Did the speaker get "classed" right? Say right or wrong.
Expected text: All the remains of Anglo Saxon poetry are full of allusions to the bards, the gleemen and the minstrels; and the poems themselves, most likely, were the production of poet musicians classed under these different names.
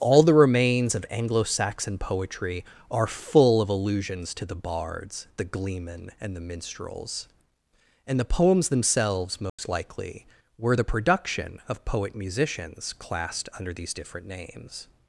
right